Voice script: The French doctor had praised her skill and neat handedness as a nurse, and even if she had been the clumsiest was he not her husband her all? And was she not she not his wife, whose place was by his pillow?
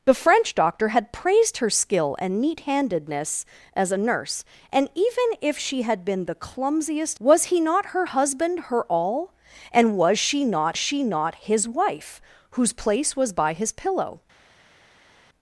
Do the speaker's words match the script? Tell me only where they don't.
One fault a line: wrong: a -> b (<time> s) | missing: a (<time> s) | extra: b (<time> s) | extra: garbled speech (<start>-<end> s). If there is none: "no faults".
no faults